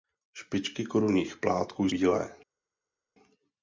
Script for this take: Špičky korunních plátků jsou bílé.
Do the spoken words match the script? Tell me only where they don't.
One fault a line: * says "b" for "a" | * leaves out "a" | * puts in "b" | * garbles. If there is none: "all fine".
* leaves out "jsou"